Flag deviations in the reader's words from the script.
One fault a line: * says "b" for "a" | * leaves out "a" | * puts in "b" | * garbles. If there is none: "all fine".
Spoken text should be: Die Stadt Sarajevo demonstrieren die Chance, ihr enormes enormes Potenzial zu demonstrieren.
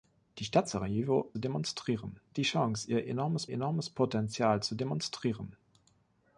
all fine